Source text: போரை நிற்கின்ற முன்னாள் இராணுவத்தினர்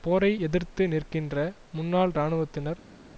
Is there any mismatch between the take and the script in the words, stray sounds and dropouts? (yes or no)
yes